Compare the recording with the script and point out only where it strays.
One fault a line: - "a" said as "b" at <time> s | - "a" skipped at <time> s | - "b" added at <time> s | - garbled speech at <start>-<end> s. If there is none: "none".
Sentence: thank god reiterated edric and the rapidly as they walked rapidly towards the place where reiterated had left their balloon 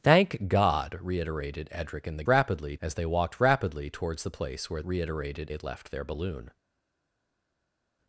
none